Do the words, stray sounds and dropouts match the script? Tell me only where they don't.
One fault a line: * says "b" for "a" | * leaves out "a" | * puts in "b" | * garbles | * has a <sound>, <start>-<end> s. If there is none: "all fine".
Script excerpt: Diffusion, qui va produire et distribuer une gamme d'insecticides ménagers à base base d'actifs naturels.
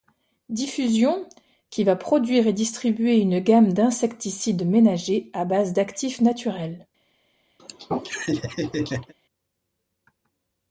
* leaves out "base"
* has a laugh, 7.6-9.1 s